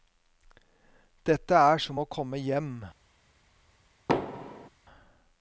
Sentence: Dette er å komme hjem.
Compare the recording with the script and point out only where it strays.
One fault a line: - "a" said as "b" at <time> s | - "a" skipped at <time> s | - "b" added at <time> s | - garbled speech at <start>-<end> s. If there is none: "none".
- "som" added at 1.8 s